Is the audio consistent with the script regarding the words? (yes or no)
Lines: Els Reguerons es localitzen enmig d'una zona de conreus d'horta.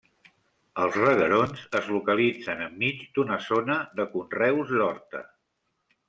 yes